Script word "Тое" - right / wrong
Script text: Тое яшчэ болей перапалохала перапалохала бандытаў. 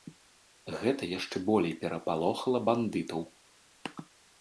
wrong